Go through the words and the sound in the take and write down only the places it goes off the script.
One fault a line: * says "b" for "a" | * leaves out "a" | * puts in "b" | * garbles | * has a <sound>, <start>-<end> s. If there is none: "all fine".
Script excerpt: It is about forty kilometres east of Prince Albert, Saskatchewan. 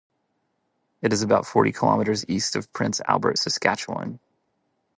all fine